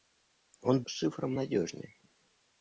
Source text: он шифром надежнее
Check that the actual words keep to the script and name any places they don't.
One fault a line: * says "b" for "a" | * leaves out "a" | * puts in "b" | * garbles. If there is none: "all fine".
all fine